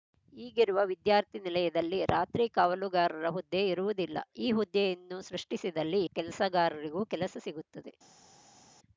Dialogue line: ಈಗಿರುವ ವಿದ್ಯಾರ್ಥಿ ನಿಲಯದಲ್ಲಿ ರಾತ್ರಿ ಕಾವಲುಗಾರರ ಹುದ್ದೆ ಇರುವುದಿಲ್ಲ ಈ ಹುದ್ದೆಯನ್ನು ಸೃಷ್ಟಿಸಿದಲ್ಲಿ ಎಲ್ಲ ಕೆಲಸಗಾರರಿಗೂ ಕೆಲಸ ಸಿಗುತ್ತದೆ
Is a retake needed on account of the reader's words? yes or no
yes